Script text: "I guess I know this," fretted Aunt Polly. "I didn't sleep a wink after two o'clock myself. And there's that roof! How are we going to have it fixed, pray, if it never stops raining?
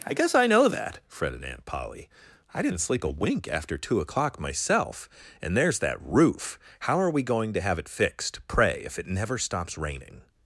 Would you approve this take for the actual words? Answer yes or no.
no